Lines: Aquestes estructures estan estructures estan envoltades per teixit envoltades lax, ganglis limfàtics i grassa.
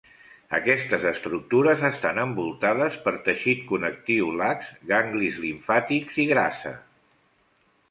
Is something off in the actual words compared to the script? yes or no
yes